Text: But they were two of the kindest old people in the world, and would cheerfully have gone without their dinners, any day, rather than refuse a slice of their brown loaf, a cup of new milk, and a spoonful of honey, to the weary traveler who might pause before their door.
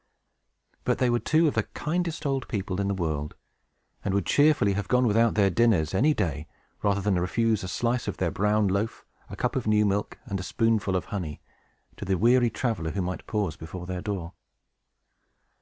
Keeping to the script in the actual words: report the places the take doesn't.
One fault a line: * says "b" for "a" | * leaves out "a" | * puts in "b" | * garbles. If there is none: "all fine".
all fine